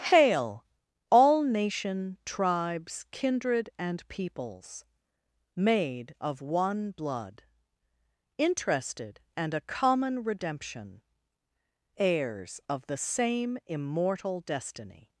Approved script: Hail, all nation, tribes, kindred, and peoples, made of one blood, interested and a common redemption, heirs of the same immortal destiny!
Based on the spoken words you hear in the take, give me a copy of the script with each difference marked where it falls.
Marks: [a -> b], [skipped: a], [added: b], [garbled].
Hail, all nation, tribes, kindred, and peoples, made of one blood, interested and a common redemption, heirs of the same immortal destiny!